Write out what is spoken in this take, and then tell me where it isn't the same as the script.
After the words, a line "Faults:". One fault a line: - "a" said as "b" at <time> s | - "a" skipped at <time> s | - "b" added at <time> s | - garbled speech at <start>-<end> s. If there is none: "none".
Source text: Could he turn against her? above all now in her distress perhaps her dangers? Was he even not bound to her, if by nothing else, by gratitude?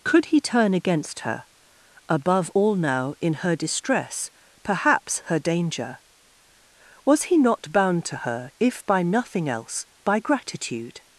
Could he turn against her? above all now in her distress perhaps her danger? Was he not bound to her, if by nothing else, by gratitude?
Faults:
- "dangers" said as "danger" at 5.4 s
- "even" skipped at 7.4 s